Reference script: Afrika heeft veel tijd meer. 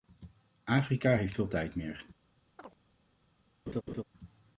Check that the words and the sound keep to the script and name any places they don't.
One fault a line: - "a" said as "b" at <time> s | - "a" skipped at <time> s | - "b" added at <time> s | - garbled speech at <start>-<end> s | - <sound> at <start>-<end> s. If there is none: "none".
- chirp at 2.6-2.8 s
- laugh at 3.7-4.0 s